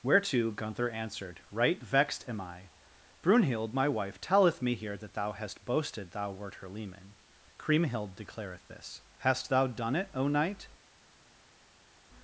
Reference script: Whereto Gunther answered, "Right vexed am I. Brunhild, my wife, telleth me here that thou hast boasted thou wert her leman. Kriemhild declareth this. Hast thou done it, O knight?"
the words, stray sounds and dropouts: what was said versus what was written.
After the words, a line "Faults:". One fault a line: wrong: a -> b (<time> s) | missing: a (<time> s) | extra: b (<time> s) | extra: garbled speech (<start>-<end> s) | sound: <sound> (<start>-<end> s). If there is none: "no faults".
Whereto Gunther answered, "Right vexed am I. Brunhild, my wife, telleth me here that thou hast boasted thou wert her leman. Kriemhild declareth this. Hast thou done it, O knight?"
Faults:
no faults